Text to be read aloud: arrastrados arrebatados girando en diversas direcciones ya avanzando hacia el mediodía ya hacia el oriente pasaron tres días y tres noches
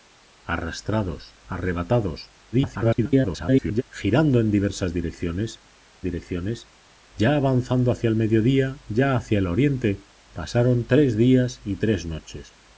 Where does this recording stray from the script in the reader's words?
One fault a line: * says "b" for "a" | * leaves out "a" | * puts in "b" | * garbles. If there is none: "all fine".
* garbles
* puts in "direcciones"